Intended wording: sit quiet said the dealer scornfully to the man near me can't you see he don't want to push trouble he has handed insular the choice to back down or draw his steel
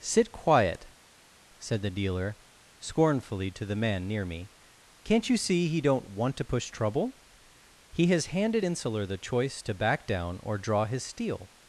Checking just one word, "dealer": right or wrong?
right